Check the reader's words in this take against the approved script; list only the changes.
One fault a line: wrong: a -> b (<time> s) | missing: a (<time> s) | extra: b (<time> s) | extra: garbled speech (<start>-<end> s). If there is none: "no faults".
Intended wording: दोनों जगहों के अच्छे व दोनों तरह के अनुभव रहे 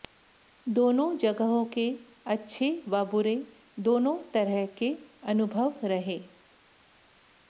extra: बुरे (3.0 s)